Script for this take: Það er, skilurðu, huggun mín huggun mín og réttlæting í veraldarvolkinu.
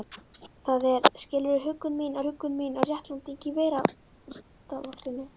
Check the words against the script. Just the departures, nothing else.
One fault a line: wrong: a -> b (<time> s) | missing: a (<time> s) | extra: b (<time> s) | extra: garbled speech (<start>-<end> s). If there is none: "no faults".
no faults